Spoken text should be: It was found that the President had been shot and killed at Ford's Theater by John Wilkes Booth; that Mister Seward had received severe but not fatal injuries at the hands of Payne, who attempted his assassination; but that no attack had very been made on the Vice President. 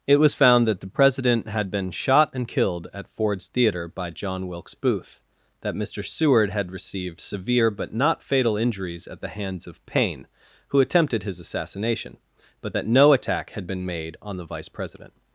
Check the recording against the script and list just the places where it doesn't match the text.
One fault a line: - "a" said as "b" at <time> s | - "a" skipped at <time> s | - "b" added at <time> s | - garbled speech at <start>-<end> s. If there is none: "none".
- "very" skipped at 13.7 s